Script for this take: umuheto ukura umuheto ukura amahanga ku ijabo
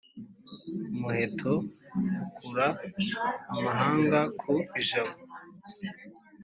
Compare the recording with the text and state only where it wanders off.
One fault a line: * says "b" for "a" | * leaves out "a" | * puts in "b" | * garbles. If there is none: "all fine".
* leaves out "umuheto ukura"